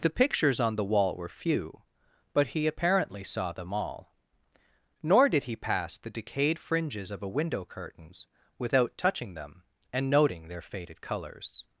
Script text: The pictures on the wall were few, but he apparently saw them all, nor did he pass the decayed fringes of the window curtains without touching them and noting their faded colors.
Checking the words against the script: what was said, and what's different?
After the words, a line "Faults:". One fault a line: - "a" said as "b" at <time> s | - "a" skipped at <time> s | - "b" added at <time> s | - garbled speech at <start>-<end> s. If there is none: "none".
The pictures on the wall were few, but he apparently saw them all, nor did he pass the decayed fringes of a window curtains without touching them and noting their faded colors.
Faults:
- "the" said as "a" at 7.2 s